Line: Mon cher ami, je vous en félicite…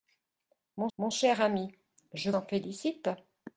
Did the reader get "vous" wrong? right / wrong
wrong